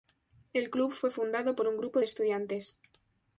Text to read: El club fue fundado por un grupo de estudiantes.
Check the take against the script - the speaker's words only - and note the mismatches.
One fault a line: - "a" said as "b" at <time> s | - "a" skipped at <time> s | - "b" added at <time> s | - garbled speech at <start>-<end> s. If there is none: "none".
none